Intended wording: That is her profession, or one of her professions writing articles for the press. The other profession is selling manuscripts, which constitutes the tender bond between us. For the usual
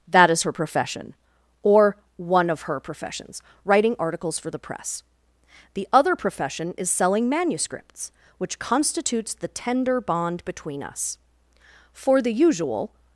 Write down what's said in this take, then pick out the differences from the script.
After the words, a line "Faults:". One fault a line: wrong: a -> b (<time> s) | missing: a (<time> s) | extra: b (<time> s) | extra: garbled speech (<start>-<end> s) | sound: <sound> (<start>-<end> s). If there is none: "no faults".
That is her profession, or one of her professions writing articles for the press. The other profession is selling manuscripts, which constitutes the tender bond between us. For the usual
Faults:
no faults